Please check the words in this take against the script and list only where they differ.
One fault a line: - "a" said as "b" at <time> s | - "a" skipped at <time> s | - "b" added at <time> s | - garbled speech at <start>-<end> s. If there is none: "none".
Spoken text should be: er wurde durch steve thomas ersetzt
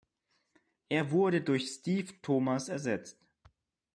none